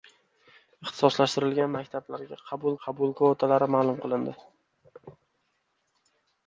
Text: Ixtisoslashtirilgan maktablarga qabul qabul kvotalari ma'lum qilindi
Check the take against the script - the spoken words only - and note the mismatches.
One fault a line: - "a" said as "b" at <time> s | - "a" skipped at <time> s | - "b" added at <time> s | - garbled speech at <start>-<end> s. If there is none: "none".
none